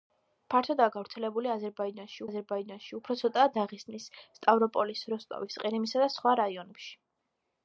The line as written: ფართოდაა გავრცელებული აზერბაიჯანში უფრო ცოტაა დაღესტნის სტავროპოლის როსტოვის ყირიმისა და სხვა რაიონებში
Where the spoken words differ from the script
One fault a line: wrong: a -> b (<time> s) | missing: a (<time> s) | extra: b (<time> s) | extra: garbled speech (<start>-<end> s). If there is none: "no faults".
extra: აზერბაიჯანში (2.3 s)